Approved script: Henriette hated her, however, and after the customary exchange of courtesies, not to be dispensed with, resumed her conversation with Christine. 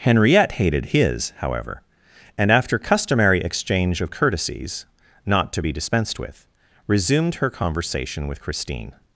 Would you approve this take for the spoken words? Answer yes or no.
no